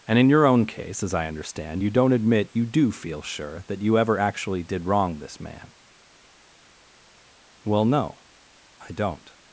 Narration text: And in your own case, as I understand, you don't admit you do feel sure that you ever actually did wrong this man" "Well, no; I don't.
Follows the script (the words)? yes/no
yes